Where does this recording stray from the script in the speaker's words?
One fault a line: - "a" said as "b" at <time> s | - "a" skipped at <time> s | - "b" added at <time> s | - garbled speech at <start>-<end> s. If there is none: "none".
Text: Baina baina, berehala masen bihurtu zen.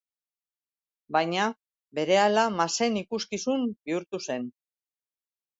- "baina" skipped at 1.4 s
- "ikuskizun" added at 3.0 s